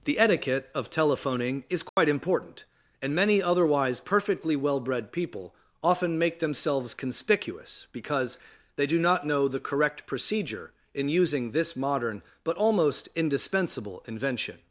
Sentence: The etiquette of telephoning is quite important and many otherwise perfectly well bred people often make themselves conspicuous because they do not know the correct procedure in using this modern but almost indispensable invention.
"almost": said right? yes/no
yes